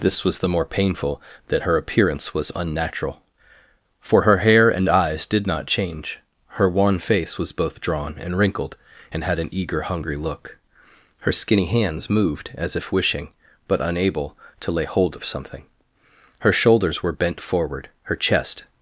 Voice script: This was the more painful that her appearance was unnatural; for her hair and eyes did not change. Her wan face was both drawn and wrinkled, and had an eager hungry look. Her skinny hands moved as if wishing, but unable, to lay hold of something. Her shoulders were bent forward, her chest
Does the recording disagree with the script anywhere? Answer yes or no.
no